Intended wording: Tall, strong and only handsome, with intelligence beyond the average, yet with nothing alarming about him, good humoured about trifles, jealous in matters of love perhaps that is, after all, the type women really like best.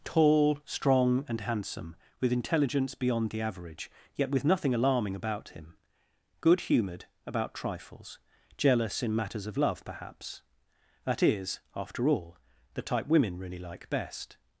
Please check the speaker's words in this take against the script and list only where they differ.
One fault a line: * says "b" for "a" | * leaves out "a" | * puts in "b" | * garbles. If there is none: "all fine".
* leaves out "only"